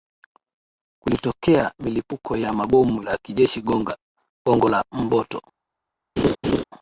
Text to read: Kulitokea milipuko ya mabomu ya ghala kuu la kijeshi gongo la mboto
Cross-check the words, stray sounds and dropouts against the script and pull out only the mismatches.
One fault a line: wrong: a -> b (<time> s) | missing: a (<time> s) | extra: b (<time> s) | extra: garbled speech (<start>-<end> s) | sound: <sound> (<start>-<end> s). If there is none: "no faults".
missing: ya ghala kuu (3.0 s)
sound: laugh (6.2-6.6 s)